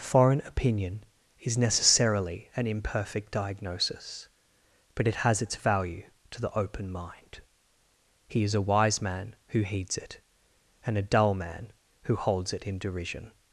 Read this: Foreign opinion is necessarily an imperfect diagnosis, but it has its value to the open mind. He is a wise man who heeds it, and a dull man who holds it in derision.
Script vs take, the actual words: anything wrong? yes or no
no